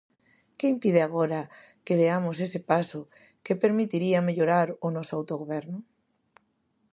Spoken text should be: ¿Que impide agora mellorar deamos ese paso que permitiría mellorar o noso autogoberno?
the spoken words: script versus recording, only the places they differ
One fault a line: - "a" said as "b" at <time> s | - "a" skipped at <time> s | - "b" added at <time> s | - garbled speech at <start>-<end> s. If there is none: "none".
- "mellorar" said as "que" at 1.9 s